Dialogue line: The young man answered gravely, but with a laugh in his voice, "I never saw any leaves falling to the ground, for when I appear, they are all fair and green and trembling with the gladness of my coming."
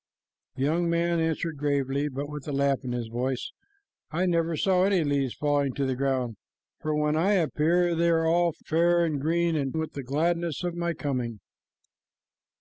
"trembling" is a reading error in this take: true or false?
true